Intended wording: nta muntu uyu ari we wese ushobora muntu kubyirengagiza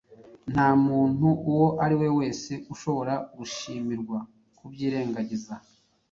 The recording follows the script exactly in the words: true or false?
false